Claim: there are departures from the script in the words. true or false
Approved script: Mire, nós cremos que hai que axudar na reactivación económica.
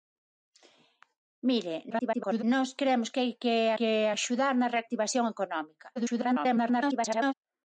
true